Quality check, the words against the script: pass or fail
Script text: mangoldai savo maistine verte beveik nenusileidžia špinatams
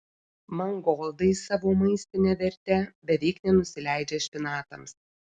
pass